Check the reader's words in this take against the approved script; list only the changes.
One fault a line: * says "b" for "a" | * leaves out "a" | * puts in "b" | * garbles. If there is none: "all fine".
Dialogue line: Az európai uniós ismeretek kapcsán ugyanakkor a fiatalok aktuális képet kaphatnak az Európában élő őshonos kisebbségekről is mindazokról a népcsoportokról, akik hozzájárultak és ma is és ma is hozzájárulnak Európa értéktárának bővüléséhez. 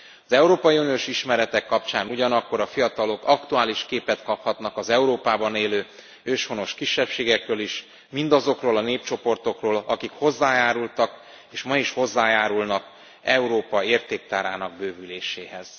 * leaves out "és ma is"